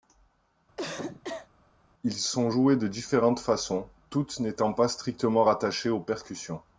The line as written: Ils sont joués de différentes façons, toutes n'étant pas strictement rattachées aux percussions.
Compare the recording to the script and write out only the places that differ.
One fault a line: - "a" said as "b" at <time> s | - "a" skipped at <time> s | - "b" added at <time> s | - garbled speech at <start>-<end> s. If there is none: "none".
none